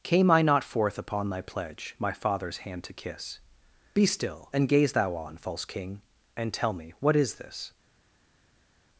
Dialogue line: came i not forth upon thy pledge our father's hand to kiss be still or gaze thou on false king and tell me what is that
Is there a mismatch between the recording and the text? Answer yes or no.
yes